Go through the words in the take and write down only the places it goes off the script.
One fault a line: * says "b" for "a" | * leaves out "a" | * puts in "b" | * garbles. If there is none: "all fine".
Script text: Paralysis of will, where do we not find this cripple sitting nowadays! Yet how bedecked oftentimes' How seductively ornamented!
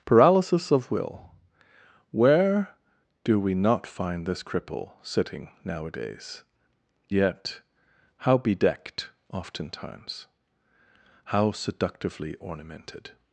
all fine